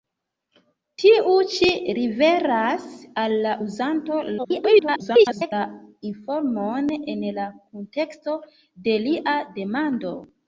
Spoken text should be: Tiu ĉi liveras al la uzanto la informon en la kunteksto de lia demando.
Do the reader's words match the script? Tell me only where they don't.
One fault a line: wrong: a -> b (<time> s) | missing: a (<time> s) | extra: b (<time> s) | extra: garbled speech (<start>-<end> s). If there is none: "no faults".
extra: garbled speech (4.4-5.5 s)